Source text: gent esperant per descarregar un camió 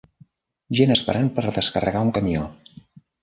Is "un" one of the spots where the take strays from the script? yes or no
no